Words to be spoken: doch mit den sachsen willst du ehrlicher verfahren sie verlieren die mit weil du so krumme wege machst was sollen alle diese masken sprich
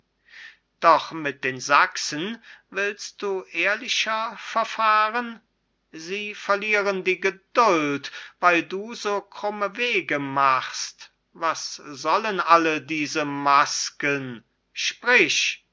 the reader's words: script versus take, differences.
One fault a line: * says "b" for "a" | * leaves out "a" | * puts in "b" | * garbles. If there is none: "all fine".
* says "geduld" for "mit"